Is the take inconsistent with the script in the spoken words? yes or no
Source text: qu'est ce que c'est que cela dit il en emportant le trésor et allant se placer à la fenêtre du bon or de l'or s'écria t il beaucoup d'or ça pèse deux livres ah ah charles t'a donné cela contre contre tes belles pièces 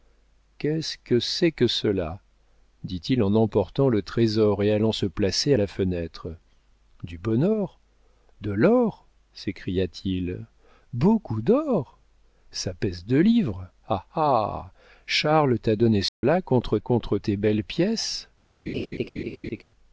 no